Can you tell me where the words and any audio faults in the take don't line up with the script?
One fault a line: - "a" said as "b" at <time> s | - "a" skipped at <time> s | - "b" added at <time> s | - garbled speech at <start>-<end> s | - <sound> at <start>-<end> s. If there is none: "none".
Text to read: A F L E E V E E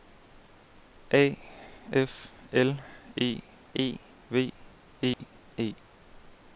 - dropout at 5.1-5.2 s